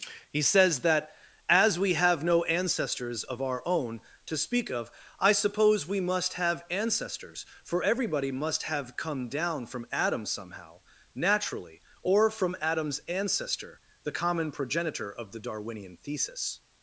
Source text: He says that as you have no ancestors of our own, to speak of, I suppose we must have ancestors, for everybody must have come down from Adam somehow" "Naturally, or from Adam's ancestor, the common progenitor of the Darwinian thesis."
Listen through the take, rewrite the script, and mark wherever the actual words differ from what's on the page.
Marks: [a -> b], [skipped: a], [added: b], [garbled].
He says that as [you -> we] have no ancestors of our own, to speak of, I suppose we must have ancestors, for everybody must have come down from Adam somehow" "Naturally, or from Adam's ancestor, the common progenitor of the Darwinian thesis."